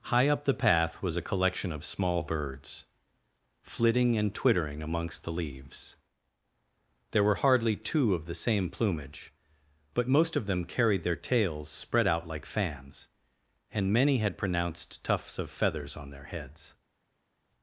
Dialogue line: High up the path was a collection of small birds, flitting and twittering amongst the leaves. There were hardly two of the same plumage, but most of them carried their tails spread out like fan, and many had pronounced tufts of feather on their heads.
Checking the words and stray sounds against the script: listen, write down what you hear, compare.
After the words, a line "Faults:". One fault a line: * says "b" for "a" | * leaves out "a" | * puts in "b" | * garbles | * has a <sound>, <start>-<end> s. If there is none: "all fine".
High up the path was a collection of small birds, flitting and twittering amongst the leaves. There were hardly two of the same plumage, but most of them carried their tails spread out like fans, and many had pronounced tufts of feathers on their heads.
Faults:
* says "fans" for "fan"
* says "feathers" for "feather"